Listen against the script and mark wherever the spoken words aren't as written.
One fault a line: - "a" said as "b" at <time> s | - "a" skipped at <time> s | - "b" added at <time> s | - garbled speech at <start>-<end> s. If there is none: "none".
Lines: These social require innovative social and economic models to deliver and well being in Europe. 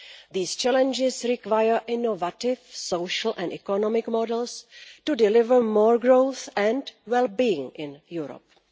- "social" said as "challenges" at 0.6 s
- "more growth" added at 5.6 s